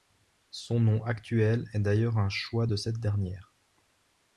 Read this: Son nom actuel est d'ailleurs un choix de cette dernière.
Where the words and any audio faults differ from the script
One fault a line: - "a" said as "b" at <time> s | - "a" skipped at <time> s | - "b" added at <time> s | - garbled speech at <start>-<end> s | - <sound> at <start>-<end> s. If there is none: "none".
none